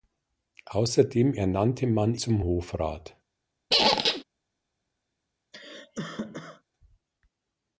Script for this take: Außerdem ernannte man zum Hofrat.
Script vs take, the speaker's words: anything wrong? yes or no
no